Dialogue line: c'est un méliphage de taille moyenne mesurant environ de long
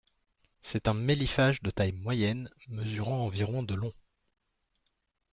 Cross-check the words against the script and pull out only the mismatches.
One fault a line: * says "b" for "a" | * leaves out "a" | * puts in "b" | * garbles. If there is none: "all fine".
all fine